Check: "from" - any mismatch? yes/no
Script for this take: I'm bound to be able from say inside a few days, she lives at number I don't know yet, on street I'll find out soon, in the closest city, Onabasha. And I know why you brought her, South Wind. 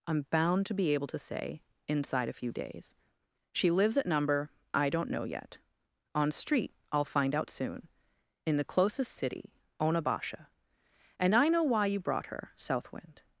yes